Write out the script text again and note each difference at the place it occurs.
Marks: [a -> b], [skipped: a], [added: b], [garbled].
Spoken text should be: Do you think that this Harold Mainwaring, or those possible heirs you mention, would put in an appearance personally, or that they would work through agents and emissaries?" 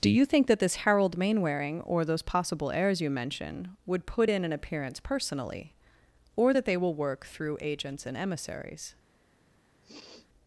Do you think that this Harold Mainwaring, or those possible heirs you mention, would put in an appearance personally, or that they [would -> will] work through agents and emissaries?"